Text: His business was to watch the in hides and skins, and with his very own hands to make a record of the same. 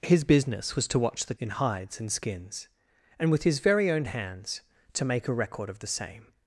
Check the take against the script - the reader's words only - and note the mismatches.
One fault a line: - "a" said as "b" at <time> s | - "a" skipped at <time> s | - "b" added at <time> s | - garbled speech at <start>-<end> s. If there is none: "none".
none